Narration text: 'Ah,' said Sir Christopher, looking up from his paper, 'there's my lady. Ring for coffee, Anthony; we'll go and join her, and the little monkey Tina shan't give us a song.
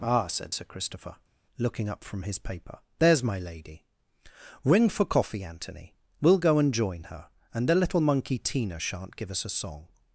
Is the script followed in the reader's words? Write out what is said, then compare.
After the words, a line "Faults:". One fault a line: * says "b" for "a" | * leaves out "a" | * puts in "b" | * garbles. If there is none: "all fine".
'Ah,' said Sir Christopher, looking up from his paper, 'there's my lady. Ring for coffee, Anthony; we'll go and join her, and the little monkey Tina shan't give us a song.
Faults:
all fine